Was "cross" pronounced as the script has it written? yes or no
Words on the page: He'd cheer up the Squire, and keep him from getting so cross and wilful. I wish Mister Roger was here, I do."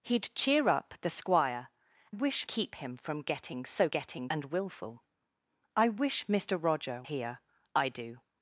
no